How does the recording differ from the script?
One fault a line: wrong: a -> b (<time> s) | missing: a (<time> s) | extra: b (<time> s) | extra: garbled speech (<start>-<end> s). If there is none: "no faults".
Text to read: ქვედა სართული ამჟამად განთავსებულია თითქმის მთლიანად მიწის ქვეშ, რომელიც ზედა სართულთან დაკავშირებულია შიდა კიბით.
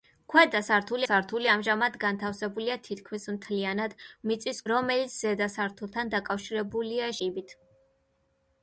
extra: სართული (1.1 s)
missing: ქვეშ (4.6 s)
missing: შიდა (7.2 s)